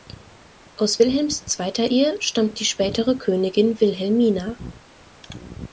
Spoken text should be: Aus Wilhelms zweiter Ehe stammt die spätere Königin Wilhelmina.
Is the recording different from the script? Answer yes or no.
no